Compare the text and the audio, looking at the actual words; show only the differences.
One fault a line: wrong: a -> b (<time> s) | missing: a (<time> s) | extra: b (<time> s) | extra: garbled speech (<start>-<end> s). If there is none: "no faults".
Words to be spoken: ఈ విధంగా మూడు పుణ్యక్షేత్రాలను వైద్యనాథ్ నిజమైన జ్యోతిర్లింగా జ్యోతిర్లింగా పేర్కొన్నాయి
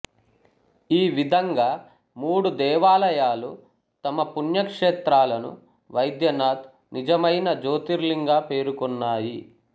extra: దేవాలయాలు తమ (2.6 s)
missing: జ్యోతిర్లింగా (8.4 s)